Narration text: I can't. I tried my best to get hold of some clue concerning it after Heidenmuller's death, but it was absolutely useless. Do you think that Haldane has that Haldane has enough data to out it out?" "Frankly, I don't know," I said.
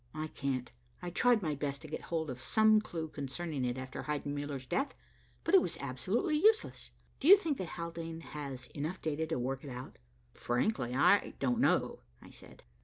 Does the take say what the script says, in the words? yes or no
no